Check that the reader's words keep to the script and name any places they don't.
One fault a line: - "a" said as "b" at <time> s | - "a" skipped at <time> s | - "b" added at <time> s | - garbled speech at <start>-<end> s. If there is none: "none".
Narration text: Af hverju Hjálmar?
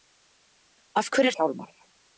none